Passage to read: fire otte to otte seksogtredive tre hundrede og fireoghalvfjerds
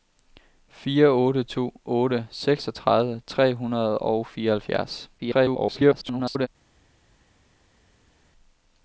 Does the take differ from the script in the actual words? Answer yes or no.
yes